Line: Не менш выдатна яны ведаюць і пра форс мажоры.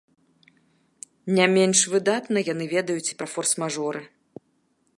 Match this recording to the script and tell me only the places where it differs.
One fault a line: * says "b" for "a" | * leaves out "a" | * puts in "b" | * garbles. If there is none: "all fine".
all fine